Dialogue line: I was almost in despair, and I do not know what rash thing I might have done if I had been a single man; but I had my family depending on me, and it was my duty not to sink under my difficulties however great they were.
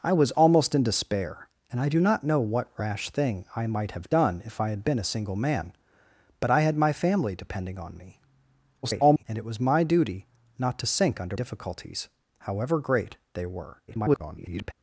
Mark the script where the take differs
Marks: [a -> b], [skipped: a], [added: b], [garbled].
I was almost in despair, and I do not know what rash thing I might have done if I had been a single man; but I had my family depending on me, [garbled] and it was my duty not to sink under [skipped: my] difficulties however great they were. [garbled]